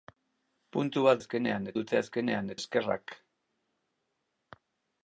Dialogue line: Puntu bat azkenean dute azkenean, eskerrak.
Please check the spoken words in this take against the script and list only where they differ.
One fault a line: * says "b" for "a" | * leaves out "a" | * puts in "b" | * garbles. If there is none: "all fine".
all fine